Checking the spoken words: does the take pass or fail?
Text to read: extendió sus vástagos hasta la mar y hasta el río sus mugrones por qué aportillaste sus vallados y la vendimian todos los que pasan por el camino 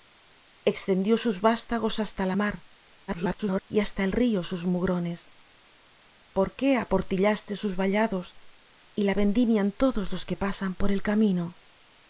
fail